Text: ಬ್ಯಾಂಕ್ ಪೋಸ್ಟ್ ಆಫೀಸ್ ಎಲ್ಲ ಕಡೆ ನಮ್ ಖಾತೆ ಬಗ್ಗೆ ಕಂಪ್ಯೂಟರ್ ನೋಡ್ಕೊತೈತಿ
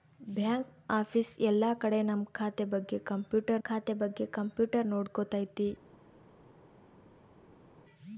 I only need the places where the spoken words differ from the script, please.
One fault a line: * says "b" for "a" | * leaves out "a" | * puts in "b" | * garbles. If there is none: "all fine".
* leaves out "ಪೋಸ್ಟ್"
* puts in "ಖಾತೆ ಬಗ್ಗೆ ಕಂಪ್ಯೂಟರ್"